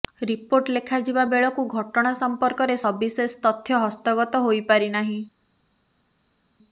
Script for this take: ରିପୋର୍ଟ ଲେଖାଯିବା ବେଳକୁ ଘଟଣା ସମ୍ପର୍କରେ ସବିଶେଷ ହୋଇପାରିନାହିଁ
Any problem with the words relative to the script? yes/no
yes